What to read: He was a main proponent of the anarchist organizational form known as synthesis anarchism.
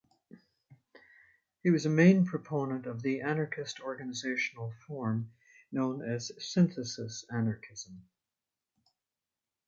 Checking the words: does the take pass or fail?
pass